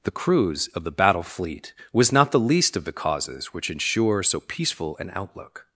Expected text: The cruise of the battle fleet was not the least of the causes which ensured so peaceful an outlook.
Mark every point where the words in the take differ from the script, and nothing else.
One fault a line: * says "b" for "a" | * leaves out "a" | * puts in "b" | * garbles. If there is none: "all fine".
* says "ensure" for "ensured"